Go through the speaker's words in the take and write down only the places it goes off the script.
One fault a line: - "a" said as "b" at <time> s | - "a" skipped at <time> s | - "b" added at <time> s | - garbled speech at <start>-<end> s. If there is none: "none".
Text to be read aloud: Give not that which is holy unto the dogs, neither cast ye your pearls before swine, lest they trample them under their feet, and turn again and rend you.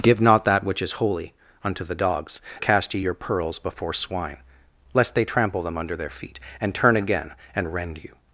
- "neither" skipped at 2.4 s